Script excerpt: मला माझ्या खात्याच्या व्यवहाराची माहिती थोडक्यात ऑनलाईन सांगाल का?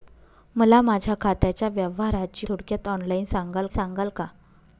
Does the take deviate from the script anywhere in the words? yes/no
yes